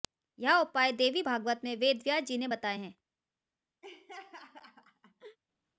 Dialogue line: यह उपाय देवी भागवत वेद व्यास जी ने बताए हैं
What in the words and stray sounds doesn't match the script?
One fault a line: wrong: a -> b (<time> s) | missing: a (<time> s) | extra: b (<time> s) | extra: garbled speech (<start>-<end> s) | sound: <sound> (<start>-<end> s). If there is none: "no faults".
extra: में (1.6 s)
sound: laugh (3.8-5.4 s)